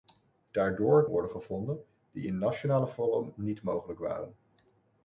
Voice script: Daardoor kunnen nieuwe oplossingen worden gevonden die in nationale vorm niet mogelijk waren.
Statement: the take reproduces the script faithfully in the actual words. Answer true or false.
false